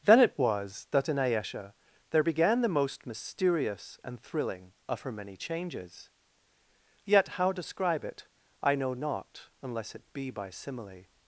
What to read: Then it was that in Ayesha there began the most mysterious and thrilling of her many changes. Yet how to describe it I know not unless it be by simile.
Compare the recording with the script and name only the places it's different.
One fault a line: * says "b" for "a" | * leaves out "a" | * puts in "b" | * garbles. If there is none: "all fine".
* leaves out "to"